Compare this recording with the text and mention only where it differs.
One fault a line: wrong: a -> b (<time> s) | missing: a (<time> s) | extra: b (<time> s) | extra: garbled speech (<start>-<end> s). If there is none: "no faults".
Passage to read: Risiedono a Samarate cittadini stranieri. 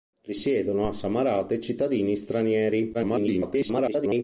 extra: garbled speech (2.9-4.2 s)